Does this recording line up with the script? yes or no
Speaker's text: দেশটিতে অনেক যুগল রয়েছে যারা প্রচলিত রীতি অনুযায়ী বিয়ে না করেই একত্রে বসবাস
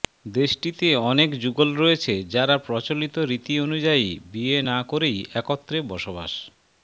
yes